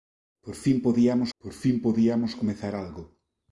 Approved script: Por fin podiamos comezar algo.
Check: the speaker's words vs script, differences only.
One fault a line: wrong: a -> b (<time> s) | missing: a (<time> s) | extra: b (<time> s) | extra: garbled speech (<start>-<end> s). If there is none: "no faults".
extra: por fin podiamos (1.4 s)